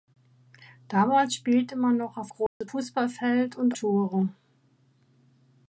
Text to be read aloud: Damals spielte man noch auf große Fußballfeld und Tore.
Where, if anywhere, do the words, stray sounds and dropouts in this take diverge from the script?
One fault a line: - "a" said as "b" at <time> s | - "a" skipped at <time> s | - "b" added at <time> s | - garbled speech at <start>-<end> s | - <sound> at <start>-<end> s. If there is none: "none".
- dropout at 2.5-2.6 s